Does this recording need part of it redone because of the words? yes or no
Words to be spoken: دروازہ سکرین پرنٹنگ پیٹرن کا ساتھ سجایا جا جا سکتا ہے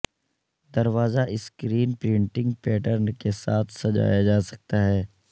yes